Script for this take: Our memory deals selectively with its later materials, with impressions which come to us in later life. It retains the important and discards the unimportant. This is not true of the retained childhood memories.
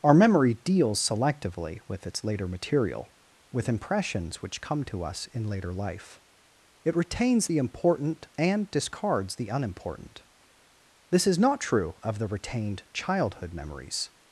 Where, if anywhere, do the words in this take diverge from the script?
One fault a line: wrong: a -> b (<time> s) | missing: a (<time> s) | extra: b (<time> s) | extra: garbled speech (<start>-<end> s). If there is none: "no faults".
wrong: materials -> material (2.5 s)